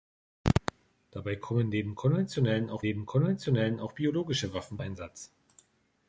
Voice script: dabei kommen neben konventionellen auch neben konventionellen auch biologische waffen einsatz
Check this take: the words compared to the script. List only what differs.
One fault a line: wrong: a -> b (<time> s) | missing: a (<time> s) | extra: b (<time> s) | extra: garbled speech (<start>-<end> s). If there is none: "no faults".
no faults